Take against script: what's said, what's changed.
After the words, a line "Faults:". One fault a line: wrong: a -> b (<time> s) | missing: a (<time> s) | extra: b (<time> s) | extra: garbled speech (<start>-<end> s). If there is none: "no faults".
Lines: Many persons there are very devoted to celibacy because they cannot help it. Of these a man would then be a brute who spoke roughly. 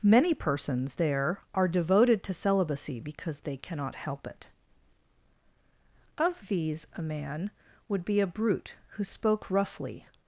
Many persons there are devoted to celibacy because they cannot help it. Of these a man would be a brute who spoke roughly.
Faults:
missing: very (1.7 s)
missing: then (8.0 s)